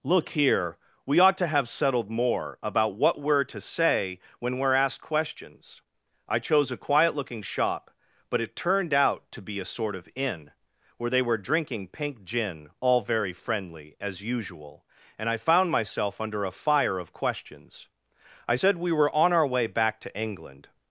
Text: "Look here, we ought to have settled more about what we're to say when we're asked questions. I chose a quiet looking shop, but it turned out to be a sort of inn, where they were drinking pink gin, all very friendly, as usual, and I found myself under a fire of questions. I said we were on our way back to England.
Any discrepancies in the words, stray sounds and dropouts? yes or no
no